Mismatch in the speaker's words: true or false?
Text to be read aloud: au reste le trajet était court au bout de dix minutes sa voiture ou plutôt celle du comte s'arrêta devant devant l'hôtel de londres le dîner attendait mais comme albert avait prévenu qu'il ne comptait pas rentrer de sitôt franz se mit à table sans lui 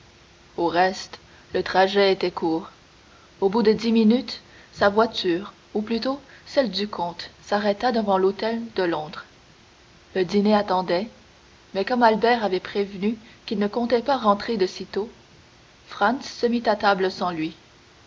true